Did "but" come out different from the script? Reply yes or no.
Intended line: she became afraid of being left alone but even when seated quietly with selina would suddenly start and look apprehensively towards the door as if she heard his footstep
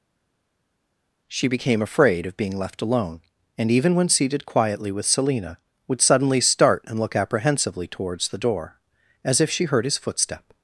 yes